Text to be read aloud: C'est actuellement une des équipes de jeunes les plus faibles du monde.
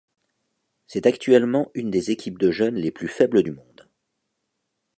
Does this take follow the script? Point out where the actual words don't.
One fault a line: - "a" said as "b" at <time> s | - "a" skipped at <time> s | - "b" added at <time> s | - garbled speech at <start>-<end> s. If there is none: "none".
none